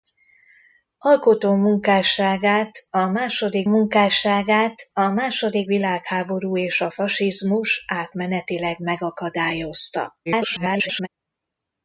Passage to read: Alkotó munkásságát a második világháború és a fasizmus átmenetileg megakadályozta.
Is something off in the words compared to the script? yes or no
yes